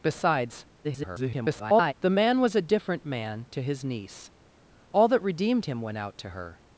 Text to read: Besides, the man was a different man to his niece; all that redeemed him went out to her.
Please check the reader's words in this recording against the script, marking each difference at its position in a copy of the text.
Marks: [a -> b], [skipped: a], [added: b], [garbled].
Besides, [garbled] the man was a different man to his niece; all that redeemed him went out to her.